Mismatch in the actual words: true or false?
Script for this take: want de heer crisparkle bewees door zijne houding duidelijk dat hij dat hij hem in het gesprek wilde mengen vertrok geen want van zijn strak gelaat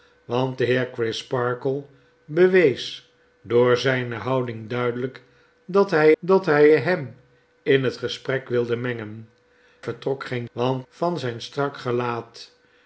false